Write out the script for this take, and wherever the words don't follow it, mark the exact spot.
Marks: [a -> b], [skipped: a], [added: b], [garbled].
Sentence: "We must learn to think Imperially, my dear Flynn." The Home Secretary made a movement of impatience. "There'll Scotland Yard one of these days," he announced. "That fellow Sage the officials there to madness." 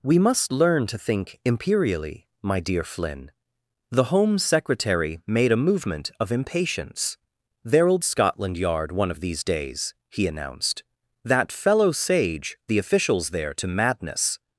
"We must learn to think Imperially, my dear Flynn." The Home Secretary made a movement of impatience. "There'll Scotland Yard one of these days," he announced. "That fellow Sage the officials there to madness."